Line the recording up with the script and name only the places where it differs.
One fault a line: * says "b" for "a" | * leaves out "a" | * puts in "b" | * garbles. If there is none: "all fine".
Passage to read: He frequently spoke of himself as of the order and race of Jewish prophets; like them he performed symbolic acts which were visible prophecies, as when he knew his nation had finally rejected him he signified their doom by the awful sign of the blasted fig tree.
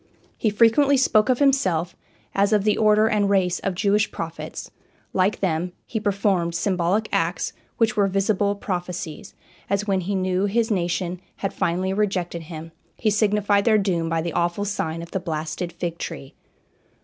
all fine